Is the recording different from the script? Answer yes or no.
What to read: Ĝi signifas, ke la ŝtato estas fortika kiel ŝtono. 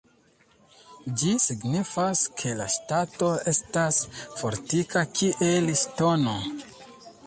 no